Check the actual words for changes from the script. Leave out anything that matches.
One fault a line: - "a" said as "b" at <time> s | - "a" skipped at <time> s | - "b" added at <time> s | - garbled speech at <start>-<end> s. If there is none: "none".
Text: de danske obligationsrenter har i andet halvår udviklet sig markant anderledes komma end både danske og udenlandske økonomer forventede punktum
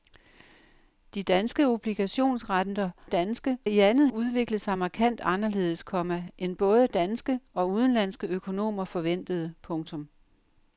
- "har" said as "danske" at 3.0 s
- "halvår" skipped at 4.1 s